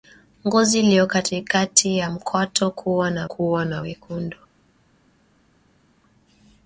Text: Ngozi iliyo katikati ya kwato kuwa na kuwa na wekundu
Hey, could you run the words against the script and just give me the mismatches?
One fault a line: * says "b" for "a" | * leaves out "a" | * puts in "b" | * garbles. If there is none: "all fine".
all fine